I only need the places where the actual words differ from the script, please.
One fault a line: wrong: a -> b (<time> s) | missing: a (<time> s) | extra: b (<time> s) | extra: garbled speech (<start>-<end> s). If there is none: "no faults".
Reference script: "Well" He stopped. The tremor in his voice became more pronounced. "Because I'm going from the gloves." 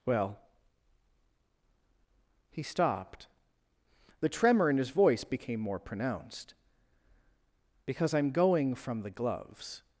no faults